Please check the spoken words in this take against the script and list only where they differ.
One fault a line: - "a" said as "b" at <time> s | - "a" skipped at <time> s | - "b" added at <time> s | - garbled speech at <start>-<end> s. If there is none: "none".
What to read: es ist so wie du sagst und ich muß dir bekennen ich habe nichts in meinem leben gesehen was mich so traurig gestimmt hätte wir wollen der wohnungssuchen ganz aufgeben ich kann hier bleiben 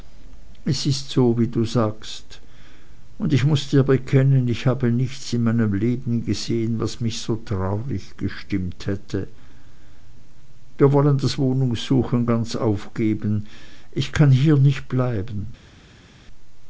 - "der" said as "das" at 11.2 s
- "nicht" added at 14.6 s